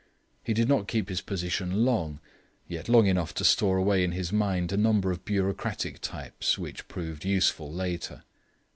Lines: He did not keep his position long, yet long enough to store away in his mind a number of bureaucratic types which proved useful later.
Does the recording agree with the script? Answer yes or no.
yes